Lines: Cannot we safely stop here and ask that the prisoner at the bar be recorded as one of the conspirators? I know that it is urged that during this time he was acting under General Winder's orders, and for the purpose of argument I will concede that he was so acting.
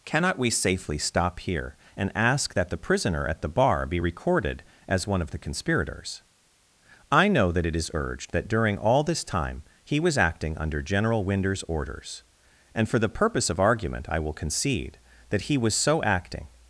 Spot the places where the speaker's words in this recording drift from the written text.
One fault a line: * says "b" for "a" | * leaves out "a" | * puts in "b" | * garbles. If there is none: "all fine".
* puts in "all"